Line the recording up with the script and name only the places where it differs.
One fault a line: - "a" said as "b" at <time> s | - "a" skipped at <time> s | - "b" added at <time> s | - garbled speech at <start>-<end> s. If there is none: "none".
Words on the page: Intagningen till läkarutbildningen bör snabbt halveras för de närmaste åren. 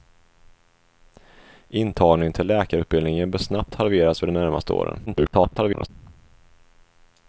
- garbled speech at 5.1-5.9 s